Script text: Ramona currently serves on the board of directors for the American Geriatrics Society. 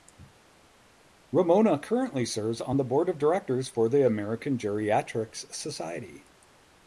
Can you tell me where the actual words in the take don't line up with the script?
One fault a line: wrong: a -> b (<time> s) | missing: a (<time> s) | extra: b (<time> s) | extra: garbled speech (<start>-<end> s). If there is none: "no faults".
no faults